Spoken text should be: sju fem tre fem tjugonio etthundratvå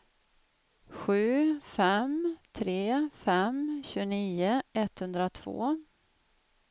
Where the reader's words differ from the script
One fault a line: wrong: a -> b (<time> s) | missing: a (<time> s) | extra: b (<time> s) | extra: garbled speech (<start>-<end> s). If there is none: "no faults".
no faults